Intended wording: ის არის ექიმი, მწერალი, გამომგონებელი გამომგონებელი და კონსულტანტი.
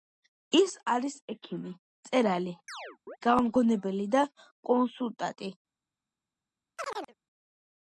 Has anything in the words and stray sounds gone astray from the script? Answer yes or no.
yes